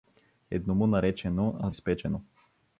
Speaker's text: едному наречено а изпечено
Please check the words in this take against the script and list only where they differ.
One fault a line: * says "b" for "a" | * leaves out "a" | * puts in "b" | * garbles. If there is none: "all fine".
all fine